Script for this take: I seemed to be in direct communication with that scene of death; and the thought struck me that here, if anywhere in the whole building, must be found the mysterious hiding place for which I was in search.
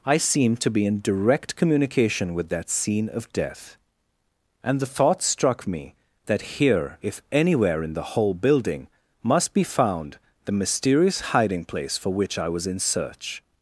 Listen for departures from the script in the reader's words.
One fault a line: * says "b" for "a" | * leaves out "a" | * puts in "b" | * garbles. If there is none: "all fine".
all fine